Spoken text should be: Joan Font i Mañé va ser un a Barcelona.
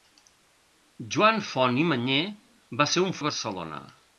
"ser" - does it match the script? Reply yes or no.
yes